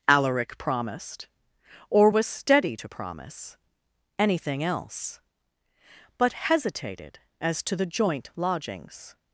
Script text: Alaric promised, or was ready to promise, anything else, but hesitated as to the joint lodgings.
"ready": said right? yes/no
no